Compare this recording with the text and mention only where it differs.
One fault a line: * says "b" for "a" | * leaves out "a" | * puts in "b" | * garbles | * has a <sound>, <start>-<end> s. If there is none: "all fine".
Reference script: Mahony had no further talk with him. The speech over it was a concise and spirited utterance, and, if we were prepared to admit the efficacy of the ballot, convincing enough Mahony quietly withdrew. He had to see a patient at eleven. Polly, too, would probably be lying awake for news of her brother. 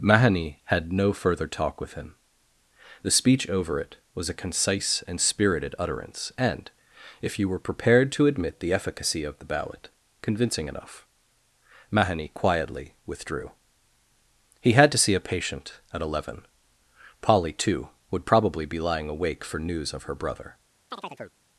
* says "you" for "we"
* has a chirp, 20.9-21.4 s